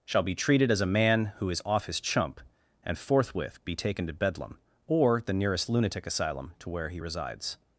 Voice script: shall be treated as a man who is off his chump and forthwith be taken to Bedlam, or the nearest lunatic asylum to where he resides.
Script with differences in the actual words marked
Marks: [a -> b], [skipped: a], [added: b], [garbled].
shall be treated as a man who is off his chump and forthwith be taken to Bedlam, or the nearest lunatic asylum to where he resides.